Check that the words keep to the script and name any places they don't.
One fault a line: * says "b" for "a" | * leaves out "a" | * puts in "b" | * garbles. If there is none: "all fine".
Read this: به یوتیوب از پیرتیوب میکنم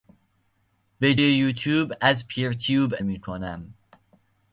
all fine